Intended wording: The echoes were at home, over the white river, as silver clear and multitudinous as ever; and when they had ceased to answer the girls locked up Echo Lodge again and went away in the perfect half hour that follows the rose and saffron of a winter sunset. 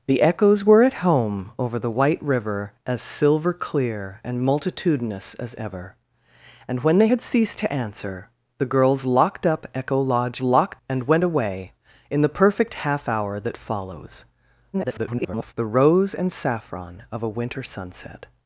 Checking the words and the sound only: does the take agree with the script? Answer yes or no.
no